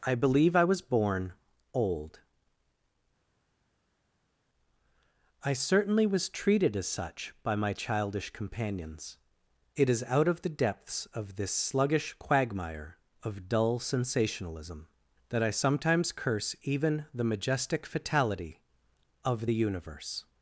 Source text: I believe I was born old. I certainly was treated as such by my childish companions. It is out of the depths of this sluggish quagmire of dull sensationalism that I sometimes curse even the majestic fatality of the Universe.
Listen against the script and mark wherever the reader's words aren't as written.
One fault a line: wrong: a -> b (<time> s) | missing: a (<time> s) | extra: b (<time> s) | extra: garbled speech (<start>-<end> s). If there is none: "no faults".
no faults